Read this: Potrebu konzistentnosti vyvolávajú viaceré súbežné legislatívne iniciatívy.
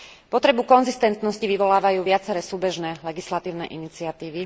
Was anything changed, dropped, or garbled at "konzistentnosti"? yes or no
no